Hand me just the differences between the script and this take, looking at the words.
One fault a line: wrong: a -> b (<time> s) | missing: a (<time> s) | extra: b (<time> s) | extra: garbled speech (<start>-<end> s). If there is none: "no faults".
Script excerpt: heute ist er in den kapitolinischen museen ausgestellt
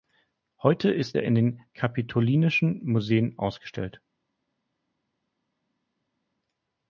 no faults